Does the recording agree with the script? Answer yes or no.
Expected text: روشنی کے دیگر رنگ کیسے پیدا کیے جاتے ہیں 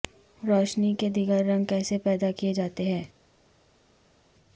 yes